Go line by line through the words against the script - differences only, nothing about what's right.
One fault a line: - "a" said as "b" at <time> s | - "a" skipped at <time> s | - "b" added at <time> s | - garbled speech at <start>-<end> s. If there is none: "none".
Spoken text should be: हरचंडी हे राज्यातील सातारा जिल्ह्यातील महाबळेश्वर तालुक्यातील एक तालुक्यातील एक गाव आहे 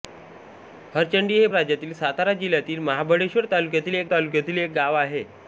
none